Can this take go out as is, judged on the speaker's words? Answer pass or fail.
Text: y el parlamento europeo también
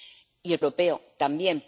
fail